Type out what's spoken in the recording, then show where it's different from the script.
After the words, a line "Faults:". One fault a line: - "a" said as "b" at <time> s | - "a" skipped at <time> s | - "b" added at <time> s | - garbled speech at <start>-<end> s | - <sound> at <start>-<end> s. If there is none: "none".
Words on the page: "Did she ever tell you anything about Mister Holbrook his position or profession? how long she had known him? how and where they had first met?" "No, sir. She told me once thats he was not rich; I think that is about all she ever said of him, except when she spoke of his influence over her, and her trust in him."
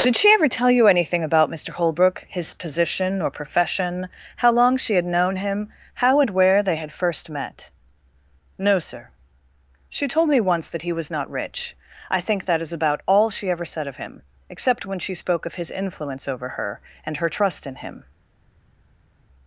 "Did she ever tell you anything about Mister Holbrook his position or profession? how long she had known him? how and where they had first met?" "No, sir. She told me once that he was not rich; I think that is about all she ever said of him, except when she spoke of his influence over her, and her trust in him."
Faults:
- "thats" said as "that" at 10.7 s